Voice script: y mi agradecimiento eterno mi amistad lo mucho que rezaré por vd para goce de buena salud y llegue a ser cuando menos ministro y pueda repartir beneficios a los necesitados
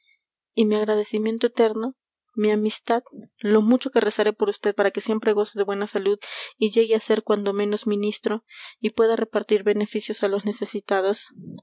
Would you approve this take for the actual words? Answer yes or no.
no